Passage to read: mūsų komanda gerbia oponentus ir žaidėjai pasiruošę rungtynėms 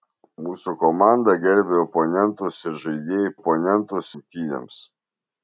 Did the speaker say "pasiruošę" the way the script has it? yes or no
no